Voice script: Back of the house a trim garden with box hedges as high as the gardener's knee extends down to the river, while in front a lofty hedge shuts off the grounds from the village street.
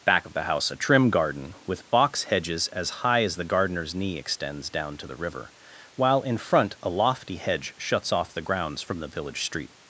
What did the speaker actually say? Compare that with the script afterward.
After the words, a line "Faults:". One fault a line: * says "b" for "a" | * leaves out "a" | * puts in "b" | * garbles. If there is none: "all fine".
Back of the house a trim garden with box hedges as high as the gardener's knee extends down to the river, while in front a lofty hedge shuts off the grounds from the village street.
Faults:
all fine